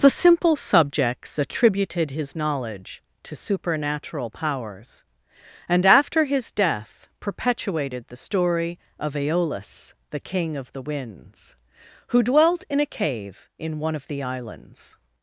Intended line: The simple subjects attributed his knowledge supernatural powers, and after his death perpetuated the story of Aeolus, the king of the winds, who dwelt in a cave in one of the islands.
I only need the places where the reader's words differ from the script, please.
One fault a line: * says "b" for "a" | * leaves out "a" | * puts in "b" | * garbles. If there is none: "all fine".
* puts in "to"